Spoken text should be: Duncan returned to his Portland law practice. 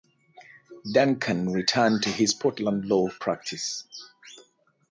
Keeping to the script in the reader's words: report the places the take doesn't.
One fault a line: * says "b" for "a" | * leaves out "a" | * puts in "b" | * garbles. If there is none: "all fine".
all fine